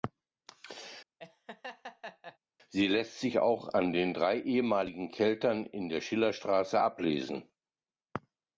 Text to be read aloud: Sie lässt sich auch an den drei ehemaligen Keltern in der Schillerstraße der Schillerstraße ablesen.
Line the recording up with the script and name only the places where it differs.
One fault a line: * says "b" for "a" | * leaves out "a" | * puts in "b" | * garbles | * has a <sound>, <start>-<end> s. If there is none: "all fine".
* has a laugh, 1.2-2.4 s
* leaves out "der Schillerstraße"